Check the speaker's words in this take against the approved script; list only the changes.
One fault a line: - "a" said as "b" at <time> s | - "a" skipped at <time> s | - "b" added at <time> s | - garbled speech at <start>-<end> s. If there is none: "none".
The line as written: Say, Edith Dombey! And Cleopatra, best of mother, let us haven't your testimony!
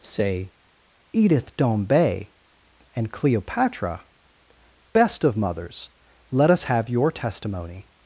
- "mother" said as "mothers" at 5.4 s
- "haven't" said as "have" at 6.6 s